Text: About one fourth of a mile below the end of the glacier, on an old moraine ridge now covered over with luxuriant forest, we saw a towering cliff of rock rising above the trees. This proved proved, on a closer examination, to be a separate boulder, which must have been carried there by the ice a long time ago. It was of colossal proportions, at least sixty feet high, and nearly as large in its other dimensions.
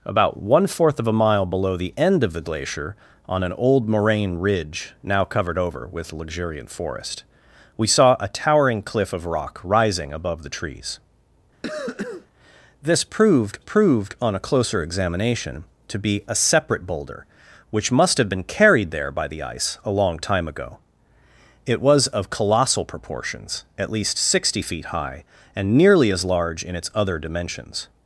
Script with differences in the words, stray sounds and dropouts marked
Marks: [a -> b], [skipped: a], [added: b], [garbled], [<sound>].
About one fourth of a mile below the end of the glacier, on an old moraine ridge now covered over with luxuriant forest, we saw a towering cliff of rock rising above the trees. [cough] This proved proved, on a closer examination, to be a separate boulder, which must have been carried there by the ice a long time ago. It was of colossal proportions, at least sixty feet high, and nearly as large in its other dimensions.